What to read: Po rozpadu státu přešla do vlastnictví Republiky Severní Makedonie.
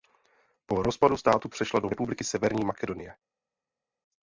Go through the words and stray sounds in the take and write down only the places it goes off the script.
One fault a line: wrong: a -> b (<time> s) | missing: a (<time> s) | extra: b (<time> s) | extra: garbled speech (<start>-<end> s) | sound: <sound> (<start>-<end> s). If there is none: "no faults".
missing: vlastnictví (1.9 s)